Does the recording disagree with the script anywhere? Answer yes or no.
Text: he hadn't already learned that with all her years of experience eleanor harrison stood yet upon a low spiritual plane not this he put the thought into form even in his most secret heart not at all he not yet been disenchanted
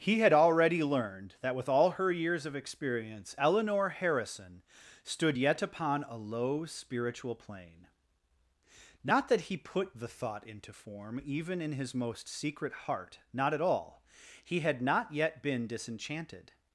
yes